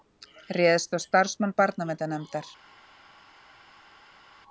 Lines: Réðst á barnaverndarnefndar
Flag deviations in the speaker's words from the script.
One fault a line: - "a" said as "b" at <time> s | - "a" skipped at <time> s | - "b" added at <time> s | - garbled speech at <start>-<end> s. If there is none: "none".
- "starfsmann" added at 1.1 s